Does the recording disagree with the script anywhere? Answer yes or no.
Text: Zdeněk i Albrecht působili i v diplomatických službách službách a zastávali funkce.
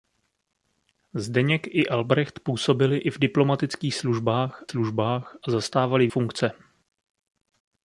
no